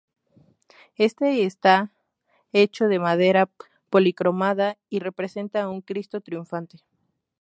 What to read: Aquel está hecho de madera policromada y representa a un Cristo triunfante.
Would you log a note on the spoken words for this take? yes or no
yes